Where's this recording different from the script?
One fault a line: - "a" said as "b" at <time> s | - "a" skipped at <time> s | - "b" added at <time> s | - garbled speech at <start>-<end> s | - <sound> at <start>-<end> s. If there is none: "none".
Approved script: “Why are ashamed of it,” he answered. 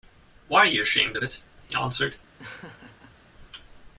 - "you" added at 0.7 s
- laugh at 2.4-3.2 s